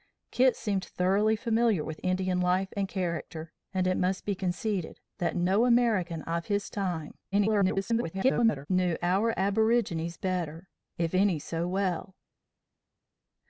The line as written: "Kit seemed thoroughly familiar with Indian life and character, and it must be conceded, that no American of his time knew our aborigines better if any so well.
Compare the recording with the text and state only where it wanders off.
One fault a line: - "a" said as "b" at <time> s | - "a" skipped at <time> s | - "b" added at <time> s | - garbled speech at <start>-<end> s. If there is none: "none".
- garbled speech at 7.3-8.7 s